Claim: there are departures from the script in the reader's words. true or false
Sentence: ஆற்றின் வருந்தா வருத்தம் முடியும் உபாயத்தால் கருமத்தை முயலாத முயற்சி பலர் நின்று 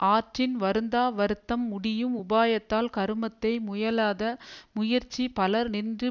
false